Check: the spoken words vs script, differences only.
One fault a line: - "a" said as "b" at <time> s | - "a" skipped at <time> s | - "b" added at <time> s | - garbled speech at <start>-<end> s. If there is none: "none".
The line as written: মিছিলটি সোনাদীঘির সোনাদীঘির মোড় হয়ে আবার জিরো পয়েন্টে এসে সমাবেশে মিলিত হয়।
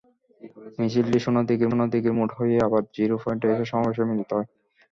none